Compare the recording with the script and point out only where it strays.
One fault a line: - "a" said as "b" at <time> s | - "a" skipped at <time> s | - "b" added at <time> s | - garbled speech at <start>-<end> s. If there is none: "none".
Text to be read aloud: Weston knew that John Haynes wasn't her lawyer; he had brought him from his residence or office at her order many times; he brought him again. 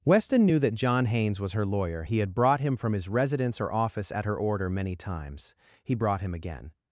- "wasn't" said as "was" at 1.4 s